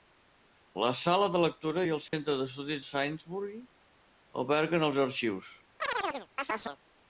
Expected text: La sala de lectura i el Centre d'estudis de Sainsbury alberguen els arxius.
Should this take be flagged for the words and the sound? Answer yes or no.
yes